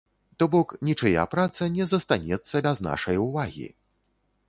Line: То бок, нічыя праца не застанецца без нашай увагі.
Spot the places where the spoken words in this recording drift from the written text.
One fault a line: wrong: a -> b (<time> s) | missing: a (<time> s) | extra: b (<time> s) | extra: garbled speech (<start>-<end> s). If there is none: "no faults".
no faults